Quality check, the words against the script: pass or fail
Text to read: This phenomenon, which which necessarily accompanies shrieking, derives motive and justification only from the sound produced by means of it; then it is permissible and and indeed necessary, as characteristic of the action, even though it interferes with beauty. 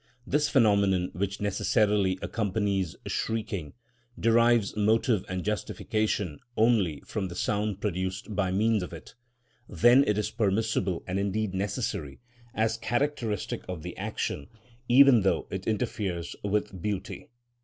fail